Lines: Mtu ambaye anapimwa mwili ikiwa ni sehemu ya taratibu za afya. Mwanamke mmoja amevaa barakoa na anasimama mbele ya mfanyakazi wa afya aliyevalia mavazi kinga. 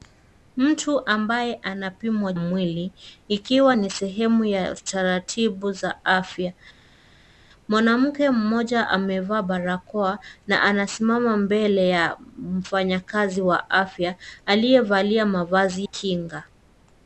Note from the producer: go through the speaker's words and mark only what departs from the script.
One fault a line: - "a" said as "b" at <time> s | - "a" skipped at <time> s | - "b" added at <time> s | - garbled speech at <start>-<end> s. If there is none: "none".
none